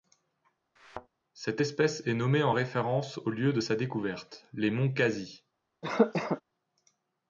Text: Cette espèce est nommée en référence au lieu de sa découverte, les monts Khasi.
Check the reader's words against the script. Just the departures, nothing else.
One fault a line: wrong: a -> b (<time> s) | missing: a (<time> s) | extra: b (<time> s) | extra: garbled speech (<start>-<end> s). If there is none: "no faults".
no faults